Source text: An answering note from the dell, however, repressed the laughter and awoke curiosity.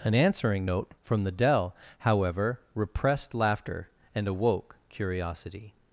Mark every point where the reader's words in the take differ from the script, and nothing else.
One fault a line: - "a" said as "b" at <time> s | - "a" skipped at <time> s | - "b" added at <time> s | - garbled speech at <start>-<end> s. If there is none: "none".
- "the" skipped at 3.3 s